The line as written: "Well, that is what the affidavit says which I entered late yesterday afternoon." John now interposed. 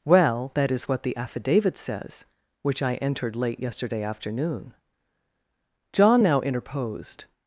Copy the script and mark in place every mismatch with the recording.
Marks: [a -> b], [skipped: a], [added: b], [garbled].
"Well, that is what the affidavit says which I entered late yesterday afternoon." John now interposed.